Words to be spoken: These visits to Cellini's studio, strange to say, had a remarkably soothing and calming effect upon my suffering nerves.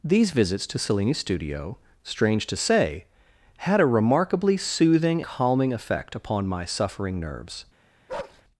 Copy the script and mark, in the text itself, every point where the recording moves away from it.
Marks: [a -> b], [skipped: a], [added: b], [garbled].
These visits to Cellini's studio, strange to say, had a remarkably soothing [skipped: and] calming effect upon my suffering nerves.